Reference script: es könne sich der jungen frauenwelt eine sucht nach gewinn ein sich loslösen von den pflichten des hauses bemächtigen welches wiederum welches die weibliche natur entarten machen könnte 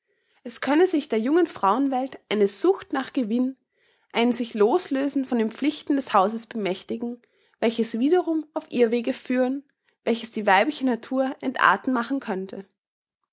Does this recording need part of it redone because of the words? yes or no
yes